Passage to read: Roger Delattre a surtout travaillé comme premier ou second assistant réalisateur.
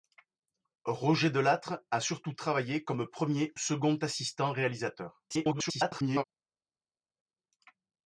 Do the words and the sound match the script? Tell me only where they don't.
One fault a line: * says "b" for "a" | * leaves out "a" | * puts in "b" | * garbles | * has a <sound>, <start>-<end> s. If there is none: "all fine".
* leaves out "ou"
* garbles